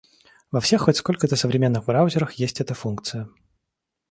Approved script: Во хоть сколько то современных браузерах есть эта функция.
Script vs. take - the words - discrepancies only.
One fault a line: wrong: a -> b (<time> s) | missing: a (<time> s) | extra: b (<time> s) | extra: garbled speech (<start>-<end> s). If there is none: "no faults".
extra: всех (0.6 s)